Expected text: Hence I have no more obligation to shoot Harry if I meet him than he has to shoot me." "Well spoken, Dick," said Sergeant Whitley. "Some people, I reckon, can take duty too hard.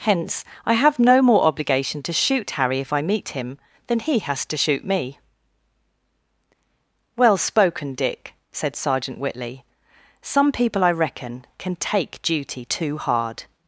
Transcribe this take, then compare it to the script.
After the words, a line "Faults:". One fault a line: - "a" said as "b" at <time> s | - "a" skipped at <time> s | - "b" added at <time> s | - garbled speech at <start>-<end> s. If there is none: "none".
Hence I have no more obligation to shoot Harry if I meet him than he has to shoot me." "Well spoken, Dick," said Sergeant Whitley. "Some people, I reckon, can take duty too hard.
Faults:
none